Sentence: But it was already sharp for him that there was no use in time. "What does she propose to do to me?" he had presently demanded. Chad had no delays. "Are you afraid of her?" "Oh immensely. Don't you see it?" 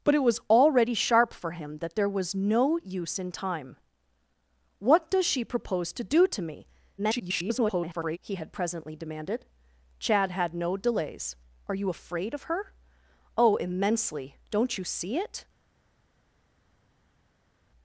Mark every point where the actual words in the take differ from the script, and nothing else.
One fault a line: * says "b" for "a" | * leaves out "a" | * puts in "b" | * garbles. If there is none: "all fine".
* garbles